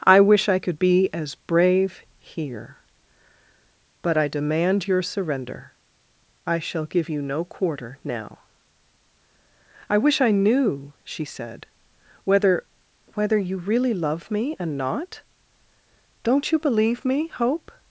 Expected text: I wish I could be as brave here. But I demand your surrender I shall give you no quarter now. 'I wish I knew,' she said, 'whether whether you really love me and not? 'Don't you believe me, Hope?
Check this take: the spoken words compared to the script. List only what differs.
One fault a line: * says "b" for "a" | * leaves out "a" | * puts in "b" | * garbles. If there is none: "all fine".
all fine